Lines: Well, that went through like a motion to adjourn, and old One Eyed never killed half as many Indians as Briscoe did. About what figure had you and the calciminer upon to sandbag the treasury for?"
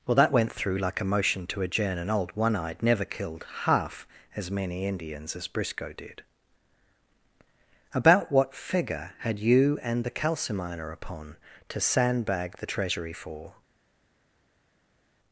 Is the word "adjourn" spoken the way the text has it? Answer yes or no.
yes